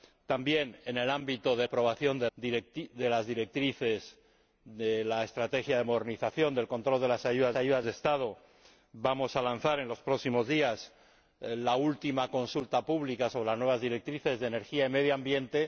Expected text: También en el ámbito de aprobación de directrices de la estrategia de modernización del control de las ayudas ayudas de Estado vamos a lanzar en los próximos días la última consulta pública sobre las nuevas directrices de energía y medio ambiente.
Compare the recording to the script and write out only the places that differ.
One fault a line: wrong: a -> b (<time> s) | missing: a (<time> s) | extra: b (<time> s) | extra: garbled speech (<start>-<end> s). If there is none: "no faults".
no faults